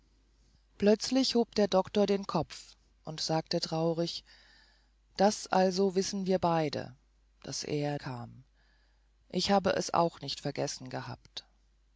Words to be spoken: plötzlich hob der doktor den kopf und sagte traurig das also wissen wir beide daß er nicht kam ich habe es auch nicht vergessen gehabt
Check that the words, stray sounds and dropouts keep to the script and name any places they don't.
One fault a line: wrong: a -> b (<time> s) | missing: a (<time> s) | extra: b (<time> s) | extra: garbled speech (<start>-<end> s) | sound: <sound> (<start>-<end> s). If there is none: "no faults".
missing: nicht (8.0 s)